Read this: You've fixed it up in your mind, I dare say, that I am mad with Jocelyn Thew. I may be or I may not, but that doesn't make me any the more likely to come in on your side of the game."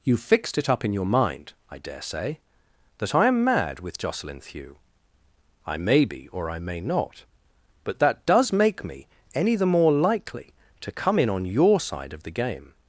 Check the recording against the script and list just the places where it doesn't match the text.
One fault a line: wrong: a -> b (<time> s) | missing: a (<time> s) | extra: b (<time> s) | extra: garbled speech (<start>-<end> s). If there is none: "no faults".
wrong: doesn't -> does (8.2 s)